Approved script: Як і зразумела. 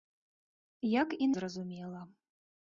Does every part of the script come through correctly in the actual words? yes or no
yes